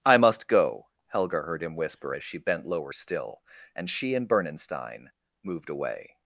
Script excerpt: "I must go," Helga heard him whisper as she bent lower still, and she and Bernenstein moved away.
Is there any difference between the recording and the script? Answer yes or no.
no